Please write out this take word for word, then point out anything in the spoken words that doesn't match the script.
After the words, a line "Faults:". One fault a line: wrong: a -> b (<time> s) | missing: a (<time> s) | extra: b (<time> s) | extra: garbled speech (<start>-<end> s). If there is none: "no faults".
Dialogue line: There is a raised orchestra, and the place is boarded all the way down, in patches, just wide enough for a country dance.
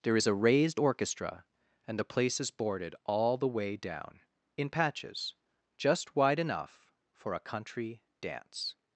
There is a raised orchestra, and the place is boarded all the way down, in patches, just wide enough for a country dance.
Faults:
no faults